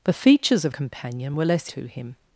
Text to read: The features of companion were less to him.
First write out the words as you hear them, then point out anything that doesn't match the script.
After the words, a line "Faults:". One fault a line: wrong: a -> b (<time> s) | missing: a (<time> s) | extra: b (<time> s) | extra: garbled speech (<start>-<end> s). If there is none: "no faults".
The features of companion were less to him.
Faults:
no faults